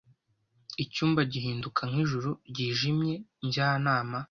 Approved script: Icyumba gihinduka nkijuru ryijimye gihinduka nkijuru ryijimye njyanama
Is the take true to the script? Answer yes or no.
no